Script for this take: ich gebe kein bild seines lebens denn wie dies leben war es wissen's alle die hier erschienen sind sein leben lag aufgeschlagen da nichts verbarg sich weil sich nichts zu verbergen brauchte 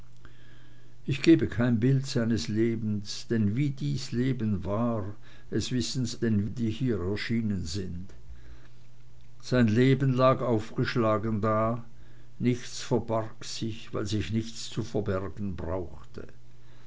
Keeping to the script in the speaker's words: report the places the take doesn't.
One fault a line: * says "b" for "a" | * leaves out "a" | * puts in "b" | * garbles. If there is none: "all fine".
* says "denn" for "alle"